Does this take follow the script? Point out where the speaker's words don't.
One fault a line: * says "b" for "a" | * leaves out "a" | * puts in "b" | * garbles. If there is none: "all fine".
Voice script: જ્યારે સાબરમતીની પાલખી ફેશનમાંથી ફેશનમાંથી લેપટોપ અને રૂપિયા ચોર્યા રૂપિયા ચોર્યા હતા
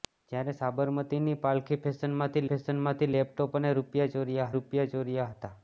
all fine